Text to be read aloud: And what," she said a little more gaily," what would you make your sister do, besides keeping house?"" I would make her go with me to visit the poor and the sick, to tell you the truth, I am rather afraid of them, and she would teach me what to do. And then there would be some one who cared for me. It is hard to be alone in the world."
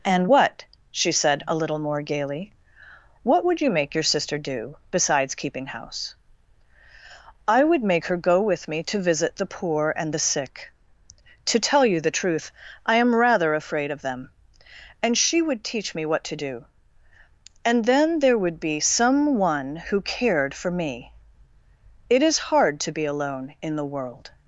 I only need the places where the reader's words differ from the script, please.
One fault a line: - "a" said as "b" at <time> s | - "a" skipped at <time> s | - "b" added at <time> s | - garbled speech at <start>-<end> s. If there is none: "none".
none